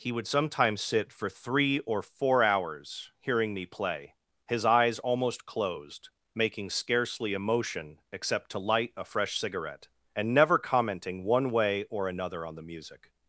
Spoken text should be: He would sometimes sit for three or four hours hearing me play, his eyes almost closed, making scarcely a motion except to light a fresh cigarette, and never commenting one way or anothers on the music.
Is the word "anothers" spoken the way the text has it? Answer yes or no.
no